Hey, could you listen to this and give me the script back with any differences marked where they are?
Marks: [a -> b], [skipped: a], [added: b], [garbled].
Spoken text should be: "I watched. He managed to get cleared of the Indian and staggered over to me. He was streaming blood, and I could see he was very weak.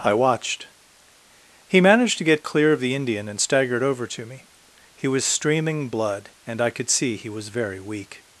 "I watched. He managed to get [cleared -> clear] of the Indian and staggered over to me. He was streaming blood, and I could see he was very weak.